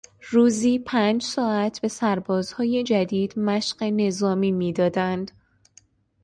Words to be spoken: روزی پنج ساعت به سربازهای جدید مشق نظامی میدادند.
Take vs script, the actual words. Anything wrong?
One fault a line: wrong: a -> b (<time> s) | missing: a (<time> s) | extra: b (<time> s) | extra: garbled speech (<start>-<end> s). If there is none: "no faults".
no faults